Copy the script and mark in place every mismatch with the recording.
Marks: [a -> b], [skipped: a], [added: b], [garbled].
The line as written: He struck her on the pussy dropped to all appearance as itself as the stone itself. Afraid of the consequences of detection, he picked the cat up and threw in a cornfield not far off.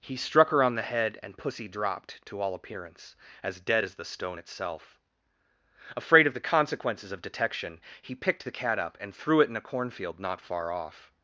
He struck her on the [added: head and] pussy dropped to all appearance as [itself -> dead] as the stone itself. Afraid of the consequences of detection, he picked the cat up and threw [added: it] in a cornfield not far off.